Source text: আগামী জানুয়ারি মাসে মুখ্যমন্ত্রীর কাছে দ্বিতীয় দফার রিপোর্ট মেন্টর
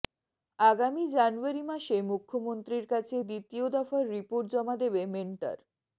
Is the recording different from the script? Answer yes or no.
yes